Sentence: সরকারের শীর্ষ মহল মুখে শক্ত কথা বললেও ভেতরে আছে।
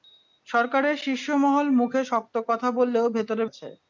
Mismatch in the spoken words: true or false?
false